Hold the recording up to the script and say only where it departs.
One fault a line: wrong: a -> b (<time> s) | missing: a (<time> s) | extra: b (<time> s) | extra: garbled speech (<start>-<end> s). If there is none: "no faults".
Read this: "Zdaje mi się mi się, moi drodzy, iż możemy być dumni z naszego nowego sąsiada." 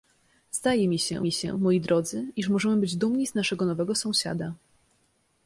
no faults